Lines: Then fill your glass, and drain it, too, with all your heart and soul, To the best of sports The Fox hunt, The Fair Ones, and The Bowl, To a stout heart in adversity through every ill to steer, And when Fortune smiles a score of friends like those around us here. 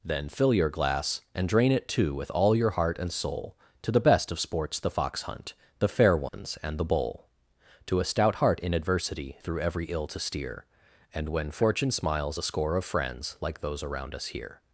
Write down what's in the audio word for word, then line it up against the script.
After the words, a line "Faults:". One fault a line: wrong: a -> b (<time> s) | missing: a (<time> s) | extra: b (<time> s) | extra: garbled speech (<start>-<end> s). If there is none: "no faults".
Then fill your glass, and drain it, too, with all your heart and soul, To the best of sports The Fox hunt, The Fair Ones, and The Bowl, To a stout heart in adversity through every ill to steer, And when Fortune smiles a score of friends like those around us here.
Faults:
no faults